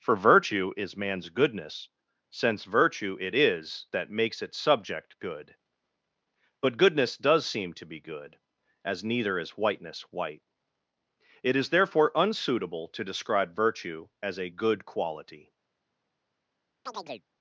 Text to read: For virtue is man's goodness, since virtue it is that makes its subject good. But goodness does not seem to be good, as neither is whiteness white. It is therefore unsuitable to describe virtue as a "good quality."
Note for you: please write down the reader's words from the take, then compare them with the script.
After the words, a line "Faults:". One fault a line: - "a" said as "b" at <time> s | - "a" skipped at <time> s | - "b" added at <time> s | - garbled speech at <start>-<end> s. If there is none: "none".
For virtue is man's goodness, since virtue it is that makes its subject good. But goodness does seem to be good, as neither is whiteness white. It is therefore unsuitable to describe virtue as a "good quality."
Faults:
- "not" skipped at 7.5 s